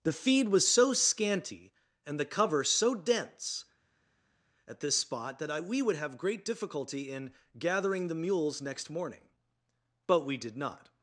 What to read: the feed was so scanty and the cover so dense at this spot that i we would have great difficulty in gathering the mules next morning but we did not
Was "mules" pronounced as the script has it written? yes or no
yes